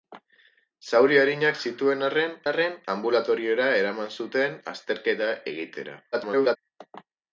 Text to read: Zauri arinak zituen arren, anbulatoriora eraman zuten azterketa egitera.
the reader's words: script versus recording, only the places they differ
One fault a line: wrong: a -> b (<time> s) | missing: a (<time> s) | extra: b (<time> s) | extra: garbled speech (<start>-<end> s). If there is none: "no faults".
extra: arren (2.5 s)
extra: garbled speech (6.1-6.6 s)